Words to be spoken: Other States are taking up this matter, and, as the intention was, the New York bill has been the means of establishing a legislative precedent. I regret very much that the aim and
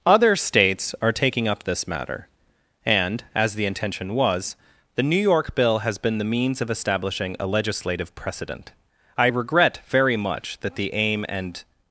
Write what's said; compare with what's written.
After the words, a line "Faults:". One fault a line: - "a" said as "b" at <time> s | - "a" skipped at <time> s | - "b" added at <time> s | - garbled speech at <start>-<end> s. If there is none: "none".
Other States are taking up this matter, and, as the intention was, the New York bill has been the means of establishing a legislative precedent. I regret very much that the aim and
Faults:
none